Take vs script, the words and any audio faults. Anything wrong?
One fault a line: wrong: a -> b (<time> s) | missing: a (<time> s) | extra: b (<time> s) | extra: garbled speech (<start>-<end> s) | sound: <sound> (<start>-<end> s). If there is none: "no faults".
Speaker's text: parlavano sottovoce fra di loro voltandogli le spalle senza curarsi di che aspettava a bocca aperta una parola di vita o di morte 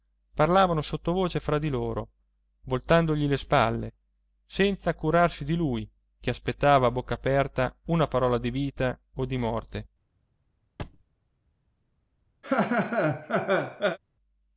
extra: lui (5.5 s)
sound: thud (10.8-11.0 s)
sound: laugh (12.4-14.0 s)